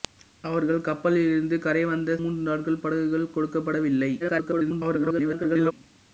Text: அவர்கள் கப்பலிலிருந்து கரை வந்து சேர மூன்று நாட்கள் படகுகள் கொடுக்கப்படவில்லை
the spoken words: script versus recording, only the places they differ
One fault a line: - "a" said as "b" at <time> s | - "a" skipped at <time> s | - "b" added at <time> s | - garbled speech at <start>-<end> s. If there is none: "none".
- "சேர" skipped at 2.1 s
- garbled speech at 4.2-5.7 s